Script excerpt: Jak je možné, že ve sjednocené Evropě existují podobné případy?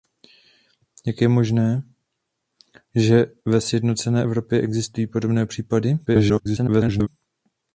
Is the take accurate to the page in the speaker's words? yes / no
no